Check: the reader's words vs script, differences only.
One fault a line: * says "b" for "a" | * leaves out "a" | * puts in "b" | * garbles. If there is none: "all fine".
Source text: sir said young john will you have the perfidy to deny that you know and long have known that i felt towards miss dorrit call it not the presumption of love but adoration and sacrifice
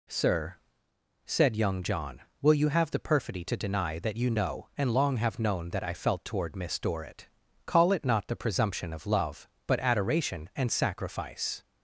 * says "toward" for "towards"